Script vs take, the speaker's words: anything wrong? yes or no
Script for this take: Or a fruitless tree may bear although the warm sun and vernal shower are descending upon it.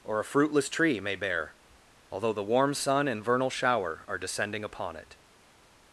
no